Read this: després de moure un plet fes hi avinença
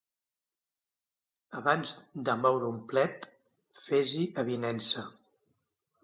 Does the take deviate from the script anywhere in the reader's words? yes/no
yes